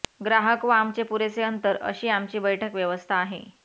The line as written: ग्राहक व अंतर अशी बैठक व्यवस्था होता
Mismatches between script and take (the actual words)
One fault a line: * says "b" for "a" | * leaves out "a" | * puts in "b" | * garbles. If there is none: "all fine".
* puts in "आमचे पुरेसे"
* puts in "आमची"
* says "आहे" for "होता"